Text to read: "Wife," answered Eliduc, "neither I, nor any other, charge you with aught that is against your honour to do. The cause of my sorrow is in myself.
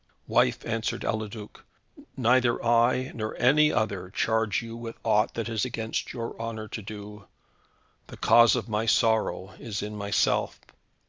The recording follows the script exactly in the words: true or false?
true